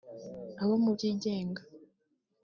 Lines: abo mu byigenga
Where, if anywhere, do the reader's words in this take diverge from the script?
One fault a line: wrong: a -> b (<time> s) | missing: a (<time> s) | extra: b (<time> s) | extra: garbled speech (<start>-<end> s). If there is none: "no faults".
no faults